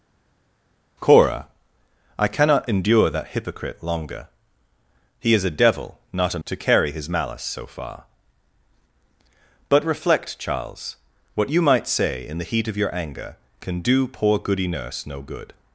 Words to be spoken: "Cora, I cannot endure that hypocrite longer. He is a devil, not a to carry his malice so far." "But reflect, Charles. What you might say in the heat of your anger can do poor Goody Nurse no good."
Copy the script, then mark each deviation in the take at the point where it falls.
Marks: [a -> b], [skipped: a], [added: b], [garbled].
"Cora, I cannot endure that hypocrite longer. He is a devil, not a to carry his malice so far." "But reflect, Charles. What you might say in the heat of your anger can do poor Goody Nurse no good."